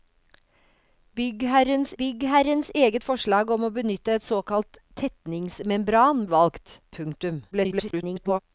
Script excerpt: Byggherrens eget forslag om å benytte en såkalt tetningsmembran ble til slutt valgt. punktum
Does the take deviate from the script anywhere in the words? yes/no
yes